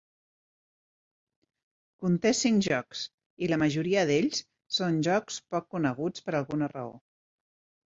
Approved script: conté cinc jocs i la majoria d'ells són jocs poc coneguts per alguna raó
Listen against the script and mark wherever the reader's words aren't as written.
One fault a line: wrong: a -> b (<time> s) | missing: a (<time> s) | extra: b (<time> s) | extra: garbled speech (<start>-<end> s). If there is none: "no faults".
no faults